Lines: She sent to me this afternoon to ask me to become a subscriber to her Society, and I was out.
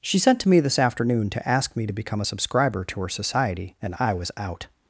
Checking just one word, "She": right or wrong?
right